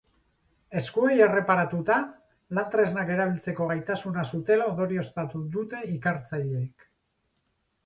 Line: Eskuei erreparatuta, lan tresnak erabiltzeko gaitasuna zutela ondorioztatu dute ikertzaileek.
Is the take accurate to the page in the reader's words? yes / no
yes